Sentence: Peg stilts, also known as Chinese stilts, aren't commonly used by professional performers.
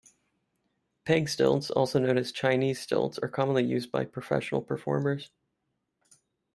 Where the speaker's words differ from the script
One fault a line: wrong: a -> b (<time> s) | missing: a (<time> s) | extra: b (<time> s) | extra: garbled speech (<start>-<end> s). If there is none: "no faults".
wrong: aren't -> are (3.2 s)